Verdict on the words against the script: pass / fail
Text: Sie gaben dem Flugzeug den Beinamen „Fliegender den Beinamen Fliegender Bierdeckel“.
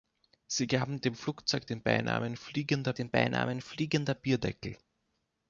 pass